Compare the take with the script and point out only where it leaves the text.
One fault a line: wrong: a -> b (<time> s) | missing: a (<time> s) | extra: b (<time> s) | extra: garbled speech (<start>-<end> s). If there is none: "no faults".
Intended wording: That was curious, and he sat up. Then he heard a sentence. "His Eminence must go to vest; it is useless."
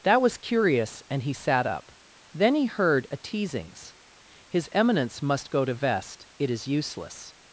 wrong: sentence -> teasings (3.2 s)